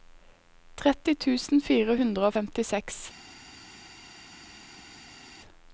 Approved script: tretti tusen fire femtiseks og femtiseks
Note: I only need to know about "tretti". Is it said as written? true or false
true